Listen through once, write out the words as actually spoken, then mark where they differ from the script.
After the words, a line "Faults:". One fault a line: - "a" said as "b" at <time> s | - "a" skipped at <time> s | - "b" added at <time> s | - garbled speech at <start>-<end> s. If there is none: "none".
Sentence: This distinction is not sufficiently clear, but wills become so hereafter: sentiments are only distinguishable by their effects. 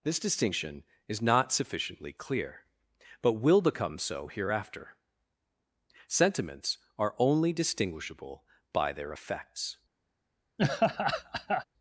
This distinction is not sufficiently clear, but will become so hereafter: sentiments are only distinguishable by their effects.
Faults:
- "wills" said as "will" at 3.3 s